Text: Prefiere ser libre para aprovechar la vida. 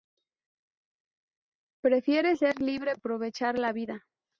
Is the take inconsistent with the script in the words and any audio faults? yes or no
yes